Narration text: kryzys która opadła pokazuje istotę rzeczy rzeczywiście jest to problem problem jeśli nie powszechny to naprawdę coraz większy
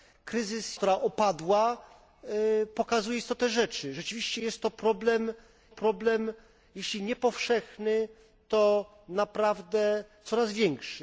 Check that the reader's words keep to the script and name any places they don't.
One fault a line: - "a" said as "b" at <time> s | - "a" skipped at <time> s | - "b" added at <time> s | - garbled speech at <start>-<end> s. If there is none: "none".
none